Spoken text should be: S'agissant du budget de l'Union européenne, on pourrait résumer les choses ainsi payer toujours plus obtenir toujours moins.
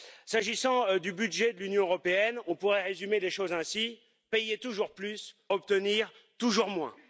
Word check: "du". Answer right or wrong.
right